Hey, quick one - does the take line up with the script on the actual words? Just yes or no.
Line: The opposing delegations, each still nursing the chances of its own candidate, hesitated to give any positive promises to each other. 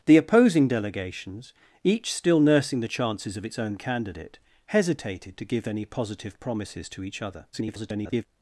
no